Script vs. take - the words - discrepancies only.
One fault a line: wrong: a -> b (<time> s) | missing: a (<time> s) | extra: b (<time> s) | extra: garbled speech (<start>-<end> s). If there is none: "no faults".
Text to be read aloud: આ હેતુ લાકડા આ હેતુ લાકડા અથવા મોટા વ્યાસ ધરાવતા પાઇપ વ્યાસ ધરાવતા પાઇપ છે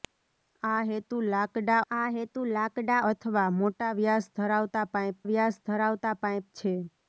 no faults